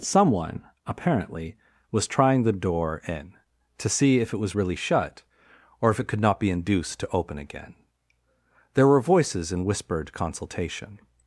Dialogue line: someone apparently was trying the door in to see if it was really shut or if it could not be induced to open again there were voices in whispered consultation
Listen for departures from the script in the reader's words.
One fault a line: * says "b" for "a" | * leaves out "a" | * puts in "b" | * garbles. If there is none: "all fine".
all fine